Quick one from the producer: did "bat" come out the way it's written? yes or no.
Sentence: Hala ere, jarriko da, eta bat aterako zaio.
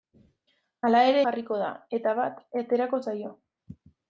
yes